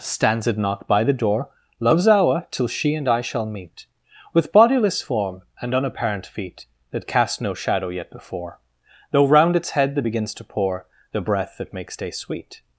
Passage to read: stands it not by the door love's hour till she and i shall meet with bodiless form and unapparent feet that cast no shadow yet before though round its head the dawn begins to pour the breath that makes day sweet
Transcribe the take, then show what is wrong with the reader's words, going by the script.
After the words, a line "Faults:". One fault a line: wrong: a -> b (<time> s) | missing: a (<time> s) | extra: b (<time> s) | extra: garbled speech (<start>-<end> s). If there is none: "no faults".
stands it not by the door love's hour till she and i shall meet with bodiless form and unapparent feet that cast no shadow yet before though round its head the begins to pour the breath that makes day sweet
Faults:
missing: dawn (10.0 s)